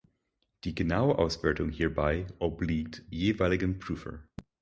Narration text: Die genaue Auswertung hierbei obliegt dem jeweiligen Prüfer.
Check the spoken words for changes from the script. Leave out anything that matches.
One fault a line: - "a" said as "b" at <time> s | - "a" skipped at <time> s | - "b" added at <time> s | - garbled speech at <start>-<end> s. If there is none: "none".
- "dem" skipped at 3.1 s